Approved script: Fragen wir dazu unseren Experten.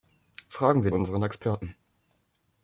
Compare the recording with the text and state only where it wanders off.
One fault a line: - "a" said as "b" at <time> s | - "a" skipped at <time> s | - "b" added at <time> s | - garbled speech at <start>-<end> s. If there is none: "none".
- "dazu" skipped at 0.9 s